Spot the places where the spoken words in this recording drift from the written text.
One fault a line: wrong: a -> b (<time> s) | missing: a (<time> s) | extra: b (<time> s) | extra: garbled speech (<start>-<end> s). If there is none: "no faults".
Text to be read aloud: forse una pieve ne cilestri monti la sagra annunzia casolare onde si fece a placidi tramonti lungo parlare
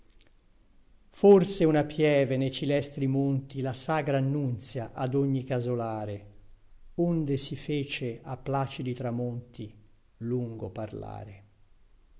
extra: ad ogni (4.9 s)